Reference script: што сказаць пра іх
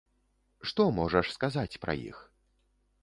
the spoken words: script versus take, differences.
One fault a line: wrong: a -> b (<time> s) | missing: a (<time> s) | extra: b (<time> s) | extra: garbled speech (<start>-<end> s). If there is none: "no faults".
extra: можаш (1.0 s)